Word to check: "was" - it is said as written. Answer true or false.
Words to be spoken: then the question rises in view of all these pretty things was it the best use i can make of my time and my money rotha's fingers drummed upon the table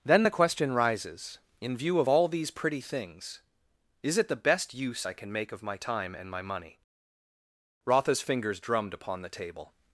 false